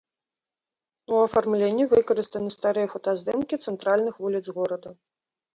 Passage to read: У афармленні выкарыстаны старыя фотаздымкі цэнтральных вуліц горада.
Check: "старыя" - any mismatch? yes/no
no